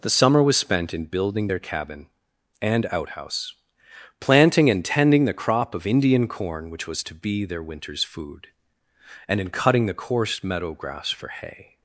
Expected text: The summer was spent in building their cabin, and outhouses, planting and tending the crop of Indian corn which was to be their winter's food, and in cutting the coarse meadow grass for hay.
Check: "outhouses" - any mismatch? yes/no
yes